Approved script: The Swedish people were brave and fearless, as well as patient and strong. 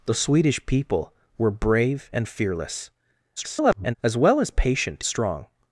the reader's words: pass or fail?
fail